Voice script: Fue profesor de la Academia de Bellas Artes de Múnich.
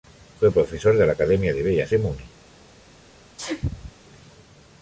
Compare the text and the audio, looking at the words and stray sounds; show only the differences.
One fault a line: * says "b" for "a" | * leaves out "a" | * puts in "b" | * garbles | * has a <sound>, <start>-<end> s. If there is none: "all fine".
* leaves out "Artes"
* has a sneeze, 3.4-3.9 s